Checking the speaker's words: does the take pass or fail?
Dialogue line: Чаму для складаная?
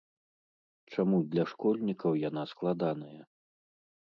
fail